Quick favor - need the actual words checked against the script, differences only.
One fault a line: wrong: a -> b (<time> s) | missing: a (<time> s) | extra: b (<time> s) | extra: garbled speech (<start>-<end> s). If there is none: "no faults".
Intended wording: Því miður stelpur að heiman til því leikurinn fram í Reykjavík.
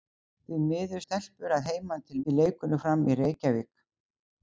no faults